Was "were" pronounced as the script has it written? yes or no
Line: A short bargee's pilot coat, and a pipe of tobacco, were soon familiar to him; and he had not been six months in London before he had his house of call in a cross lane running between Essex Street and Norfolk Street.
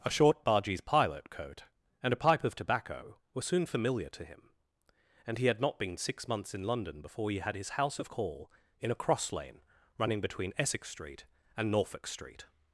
yes